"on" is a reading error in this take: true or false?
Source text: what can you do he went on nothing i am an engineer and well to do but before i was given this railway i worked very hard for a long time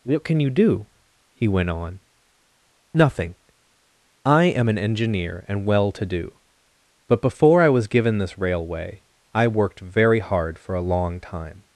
false